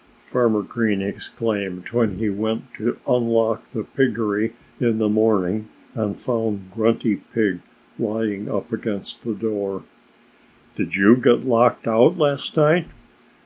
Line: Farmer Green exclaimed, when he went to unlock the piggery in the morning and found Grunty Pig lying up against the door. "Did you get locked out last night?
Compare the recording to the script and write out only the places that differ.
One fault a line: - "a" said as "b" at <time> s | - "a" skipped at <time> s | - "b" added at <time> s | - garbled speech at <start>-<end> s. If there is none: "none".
none